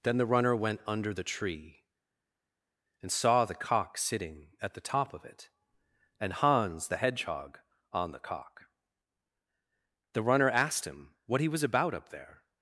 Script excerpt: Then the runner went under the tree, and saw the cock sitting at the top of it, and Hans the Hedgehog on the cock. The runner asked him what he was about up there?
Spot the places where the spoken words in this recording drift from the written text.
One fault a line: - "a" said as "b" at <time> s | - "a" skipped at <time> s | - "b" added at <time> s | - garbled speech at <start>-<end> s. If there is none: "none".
none